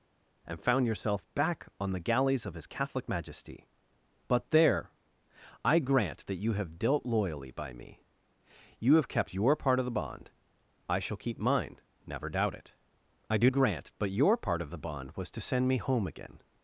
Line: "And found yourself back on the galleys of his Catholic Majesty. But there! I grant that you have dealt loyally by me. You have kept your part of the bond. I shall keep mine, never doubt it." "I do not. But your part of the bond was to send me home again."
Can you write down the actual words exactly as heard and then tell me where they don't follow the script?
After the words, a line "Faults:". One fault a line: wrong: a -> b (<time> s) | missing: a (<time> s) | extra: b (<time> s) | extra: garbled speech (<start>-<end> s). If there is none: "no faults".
"And found yourself back on the galleys of his Catholic Majesty. But there! I grant that you have dealt loyally by me. You have kept your part of the bond. I shall keep mine, never doubt it." "I do grant. But your part of the bond was to send me home again."
Faults:
wrong: not -> grant (13.5 s)